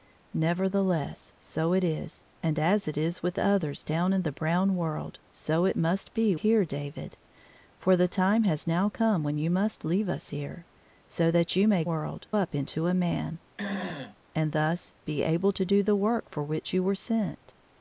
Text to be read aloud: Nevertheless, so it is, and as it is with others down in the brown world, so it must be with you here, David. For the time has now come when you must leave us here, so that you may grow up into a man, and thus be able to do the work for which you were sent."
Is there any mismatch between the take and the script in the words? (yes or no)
yes